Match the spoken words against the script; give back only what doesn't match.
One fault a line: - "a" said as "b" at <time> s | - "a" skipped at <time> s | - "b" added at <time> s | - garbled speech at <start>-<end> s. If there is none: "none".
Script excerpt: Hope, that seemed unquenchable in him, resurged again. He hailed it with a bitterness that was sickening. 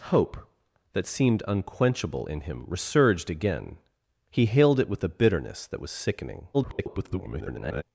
- garbled speech at 6.5-7.8 s